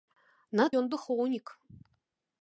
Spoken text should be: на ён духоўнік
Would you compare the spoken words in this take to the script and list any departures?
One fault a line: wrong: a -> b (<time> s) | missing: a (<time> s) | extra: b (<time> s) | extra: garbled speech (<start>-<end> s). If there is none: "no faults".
no faults